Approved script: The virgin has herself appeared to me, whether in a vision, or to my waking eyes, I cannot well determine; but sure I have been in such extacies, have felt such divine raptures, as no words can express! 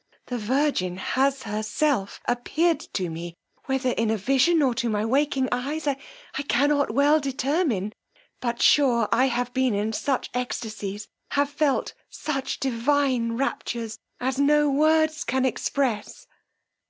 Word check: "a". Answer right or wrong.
right